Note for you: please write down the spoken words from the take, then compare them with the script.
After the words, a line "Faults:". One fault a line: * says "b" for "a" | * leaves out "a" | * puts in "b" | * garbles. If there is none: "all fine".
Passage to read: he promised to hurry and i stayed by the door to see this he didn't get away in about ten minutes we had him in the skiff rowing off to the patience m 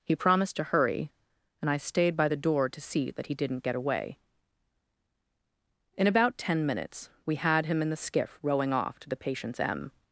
he promised to hurry and i stayed by the door to see that he didn't get away in about ten minutes we had him in the skiff rowing off to the patience m
Faults:
* says "that" for "this"